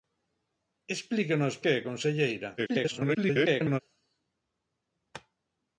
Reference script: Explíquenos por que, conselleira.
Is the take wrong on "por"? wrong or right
wrong